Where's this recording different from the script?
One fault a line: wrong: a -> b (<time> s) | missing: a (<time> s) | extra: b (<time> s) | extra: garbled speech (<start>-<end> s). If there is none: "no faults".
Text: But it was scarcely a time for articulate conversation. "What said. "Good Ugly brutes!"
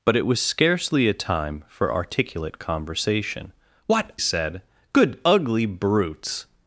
no faults